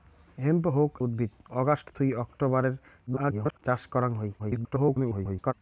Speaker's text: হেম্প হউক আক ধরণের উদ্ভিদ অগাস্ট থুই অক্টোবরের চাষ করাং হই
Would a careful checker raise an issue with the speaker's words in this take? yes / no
yes